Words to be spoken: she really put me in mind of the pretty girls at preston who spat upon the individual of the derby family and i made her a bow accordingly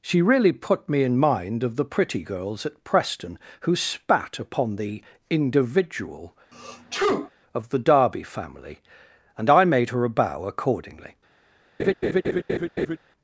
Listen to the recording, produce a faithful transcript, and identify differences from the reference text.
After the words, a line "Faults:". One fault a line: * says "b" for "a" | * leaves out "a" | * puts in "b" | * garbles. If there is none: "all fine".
she really put me in mind of the pretty girls at preston who spat upon the individual of the derby family and i made her a bow accordingly
Faults:
all fine